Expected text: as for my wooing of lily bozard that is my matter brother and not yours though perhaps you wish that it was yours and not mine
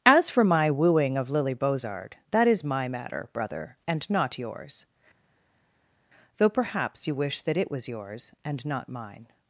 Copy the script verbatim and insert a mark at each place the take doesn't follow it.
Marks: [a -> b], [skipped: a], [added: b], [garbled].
as for my wooing of lily bozard that is my matter brother and not yours though perhaps you wish that it was yours and not mine